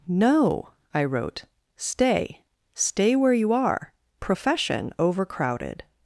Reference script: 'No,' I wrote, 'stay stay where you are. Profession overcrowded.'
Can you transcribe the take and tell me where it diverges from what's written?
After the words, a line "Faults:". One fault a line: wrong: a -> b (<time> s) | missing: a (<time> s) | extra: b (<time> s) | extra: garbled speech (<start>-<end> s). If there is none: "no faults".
'No,' I wrote, 'stay stay where you are. Profession overcrowded.'
Faults:
no faults